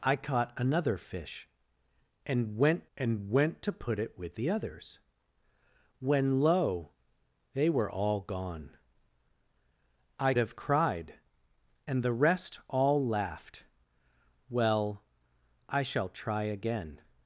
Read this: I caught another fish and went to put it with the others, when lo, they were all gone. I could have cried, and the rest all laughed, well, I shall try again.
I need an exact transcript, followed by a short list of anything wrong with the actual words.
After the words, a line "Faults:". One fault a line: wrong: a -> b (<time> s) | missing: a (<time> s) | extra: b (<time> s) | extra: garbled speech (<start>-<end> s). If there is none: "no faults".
I caught another fish and went and went to put it with the others, when lo, they were all gone. I have cried, and the rest all laughed, well, I shall try again.
Faults:
extra: and went (3.0 s)
missing: could (10.3 s)